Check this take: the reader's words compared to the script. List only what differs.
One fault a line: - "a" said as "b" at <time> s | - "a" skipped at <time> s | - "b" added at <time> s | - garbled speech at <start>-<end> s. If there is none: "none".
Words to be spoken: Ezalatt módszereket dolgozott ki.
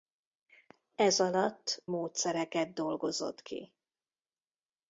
none